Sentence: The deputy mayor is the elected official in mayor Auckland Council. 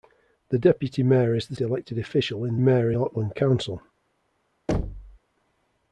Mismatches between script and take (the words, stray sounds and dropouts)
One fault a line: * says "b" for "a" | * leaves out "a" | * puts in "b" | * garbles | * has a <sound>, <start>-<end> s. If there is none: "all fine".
* has a thud, 4.7-5.2 s